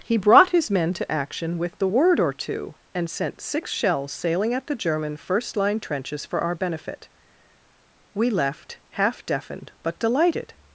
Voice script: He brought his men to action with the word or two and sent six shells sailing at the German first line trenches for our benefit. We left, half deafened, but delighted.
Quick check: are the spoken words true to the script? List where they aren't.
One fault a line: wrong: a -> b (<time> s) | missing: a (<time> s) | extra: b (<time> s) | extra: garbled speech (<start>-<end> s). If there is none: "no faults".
no faults